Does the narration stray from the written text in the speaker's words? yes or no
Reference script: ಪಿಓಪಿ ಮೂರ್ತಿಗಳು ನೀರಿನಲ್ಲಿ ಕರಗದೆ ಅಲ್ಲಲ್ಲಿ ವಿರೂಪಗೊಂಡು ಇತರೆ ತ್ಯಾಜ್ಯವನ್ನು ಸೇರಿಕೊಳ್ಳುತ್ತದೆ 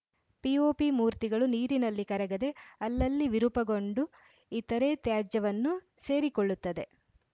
no